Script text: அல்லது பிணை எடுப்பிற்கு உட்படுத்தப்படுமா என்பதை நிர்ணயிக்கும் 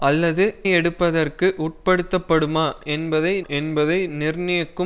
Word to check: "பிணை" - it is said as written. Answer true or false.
false